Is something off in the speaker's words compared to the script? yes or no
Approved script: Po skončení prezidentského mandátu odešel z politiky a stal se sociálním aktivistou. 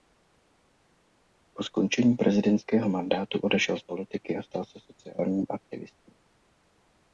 no